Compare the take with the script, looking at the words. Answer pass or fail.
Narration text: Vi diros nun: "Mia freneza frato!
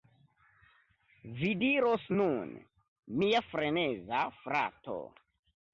pass